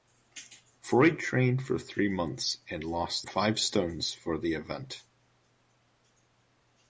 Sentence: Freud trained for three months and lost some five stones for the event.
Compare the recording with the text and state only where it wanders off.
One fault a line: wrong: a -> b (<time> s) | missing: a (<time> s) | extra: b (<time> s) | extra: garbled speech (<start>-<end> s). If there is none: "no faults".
missing: some (3.3 s)